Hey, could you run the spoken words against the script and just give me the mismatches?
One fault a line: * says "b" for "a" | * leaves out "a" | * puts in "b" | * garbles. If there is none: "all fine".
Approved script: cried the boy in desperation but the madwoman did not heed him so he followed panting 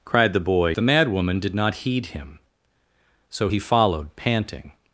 * leaves out "in desperation but"